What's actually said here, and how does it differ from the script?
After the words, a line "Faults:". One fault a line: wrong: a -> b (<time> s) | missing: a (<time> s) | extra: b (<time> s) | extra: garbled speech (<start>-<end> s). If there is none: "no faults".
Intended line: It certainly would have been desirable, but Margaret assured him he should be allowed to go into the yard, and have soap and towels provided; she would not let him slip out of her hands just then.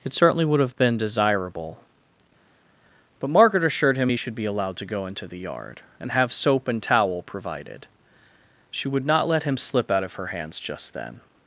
It certainly would have been desirable, but Margaret assured him he should be allowed to go into the yard, and have soap and towel provided; she would not let him slip out of her hands just then.
Faults:
wrong: towels -> towel (6.8 s)